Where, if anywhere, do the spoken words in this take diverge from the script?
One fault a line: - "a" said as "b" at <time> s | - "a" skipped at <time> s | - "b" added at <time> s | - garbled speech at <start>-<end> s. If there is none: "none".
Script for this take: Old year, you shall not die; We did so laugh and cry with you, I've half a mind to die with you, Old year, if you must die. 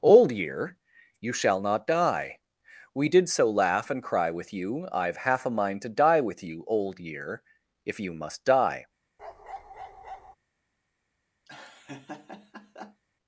none